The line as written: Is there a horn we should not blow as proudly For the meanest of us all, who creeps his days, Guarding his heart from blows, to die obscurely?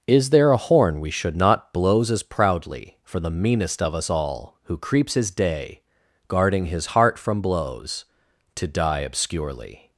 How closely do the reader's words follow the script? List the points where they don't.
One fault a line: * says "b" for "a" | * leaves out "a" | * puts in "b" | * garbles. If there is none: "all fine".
* says "blows" for "blow"
* says "day" for "days"